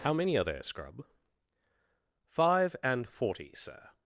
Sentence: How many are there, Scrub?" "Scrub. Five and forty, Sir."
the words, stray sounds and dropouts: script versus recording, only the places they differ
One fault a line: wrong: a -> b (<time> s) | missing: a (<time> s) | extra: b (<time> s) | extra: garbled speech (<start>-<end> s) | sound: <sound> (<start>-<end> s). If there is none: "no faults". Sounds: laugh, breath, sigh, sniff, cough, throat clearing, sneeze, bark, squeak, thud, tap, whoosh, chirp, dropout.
missing: Scrub (1.1 s)